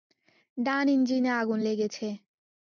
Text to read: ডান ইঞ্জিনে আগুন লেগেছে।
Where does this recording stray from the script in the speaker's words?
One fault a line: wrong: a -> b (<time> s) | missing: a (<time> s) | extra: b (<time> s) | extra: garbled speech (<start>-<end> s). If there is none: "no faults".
no faults